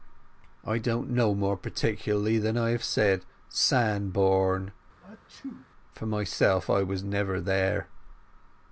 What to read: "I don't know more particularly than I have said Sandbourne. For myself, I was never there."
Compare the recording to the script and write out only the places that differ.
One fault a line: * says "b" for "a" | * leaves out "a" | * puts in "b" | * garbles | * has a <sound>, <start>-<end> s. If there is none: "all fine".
* has a sneeze, 5.0-5.7 s